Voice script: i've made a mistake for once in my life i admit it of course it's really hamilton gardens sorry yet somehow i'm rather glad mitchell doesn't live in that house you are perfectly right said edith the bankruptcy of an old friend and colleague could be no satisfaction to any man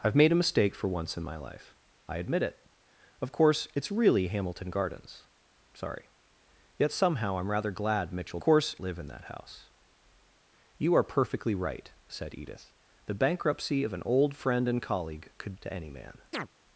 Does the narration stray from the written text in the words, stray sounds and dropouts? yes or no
yes